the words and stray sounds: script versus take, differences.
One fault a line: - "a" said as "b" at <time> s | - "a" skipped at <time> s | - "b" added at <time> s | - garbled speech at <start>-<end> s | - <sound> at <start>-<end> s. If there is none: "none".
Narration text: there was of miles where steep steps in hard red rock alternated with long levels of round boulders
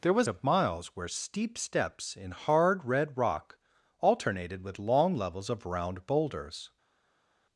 none